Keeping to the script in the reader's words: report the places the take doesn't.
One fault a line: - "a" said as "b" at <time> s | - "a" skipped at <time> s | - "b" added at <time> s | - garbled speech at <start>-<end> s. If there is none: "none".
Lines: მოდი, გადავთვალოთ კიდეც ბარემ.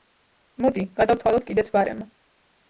none